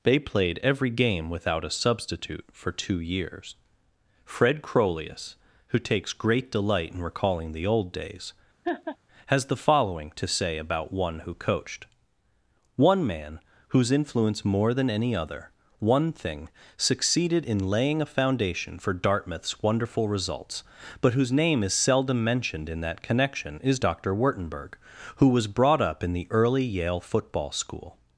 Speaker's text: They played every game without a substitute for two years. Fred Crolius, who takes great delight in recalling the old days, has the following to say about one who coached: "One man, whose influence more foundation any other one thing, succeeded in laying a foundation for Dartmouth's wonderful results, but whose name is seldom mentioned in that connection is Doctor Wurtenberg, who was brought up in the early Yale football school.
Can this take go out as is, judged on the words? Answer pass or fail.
fail